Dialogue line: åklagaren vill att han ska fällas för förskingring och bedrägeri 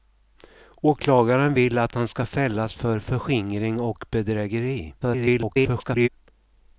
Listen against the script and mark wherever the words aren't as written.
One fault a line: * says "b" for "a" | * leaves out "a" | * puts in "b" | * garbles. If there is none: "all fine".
* garbles